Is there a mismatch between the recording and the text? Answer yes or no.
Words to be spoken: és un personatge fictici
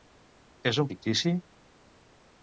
yes